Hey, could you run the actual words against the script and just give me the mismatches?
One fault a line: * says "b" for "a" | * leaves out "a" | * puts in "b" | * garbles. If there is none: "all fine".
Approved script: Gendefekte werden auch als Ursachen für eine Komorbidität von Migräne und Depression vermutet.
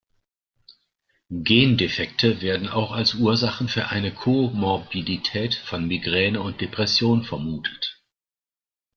all fine